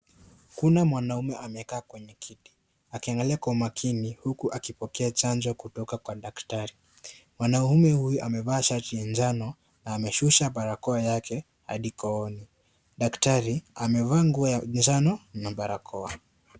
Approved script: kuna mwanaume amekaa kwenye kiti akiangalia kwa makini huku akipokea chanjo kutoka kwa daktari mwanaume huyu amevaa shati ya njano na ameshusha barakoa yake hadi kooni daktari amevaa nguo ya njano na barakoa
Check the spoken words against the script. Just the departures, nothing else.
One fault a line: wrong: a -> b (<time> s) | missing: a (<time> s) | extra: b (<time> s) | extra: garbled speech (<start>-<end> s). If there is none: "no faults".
no faults